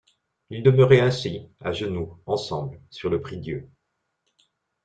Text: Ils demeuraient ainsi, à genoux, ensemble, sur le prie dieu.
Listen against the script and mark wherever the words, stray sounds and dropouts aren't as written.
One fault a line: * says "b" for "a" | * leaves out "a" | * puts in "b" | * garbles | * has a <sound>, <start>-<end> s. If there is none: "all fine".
all fine